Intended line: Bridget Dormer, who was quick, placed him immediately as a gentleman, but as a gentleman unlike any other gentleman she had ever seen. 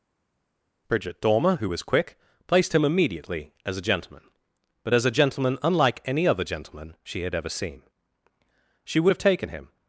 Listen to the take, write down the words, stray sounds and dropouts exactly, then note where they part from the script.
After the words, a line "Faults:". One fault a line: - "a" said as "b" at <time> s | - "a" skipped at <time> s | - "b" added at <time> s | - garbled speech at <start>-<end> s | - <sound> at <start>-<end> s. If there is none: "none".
Bridget Dormer, who was quick, placed him immediately as a gentleman, but as a gentleman unlike any other gentleman she had ever seen. She would have taken him
Faults:
- "She would have taken him" added at 8.8 s